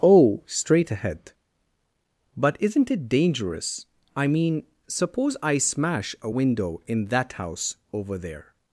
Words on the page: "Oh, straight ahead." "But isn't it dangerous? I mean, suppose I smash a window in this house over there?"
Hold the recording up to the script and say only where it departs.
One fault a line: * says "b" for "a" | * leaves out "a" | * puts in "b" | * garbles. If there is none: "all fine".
* says "that" for "this"